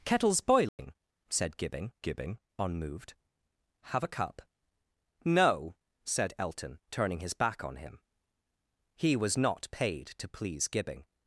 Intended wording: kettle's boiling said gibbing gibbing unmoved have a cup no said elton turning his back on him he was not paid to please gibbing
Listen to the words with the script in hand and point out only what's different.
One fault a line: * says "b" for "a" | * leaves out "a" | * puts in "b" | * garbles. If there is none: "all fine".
all fine